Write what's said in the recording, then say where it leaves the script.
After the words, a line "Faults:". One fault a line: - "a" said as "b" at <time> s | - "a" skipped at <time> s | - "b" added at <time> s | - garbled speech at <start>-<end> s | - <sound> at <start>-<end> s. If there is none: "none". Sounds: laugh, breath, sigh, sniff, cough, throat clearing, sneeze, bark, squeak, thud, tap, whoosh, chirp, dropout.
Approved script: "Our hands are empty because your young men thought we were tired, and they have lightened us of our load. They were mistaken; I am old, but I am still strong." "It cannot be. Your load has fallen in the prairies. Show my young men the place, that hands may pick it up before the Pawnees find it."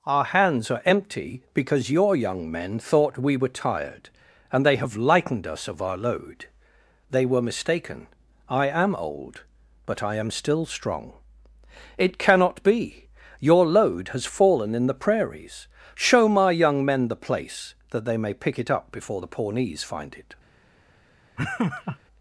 "Our hands are empty because your young men thought we were tired, and they have lightened us of our load. They were mistaken; I am old, but I am still strong." "It cannot be. Your load has fallen in the prairies. Show my young men the place, that they may pick it up before the Pawnees find it."
Faults:
- "hands" said as "they" at 18.0 s
- laugh at 21.4-22.0 s